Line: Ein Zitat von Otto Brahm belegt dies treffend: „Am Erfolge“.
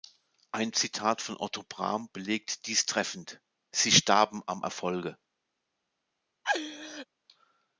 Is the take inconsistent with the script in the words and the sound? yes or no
yes